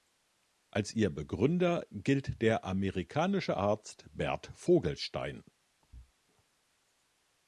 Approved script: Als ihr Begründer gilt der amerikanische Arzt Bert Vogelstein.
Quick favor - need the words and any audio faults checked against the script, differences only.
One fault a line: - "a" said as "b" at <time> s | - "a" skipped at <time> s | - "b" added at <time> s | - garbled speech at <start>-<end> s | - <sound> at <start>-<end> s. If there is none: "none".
- thud at 5.8-6.1 s